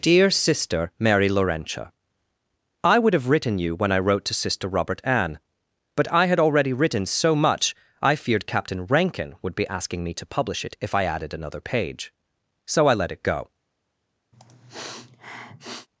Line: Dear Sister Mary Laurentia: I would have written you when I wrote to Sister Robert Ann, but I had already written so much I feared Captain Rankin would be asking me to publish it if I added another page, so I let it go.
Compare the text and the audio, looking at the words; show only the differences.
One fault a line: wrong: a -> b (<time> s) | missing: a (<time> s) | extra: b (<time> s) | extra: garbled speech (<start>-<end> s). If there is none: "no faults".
no faults